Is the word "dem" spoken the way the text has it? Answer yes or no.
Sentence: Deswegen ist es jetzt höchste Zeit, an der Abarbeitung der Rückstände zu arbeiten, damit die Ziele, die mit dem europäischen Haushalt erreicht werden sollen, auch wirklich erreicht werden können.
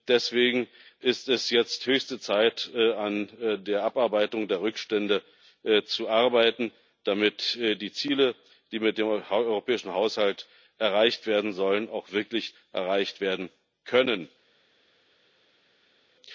yes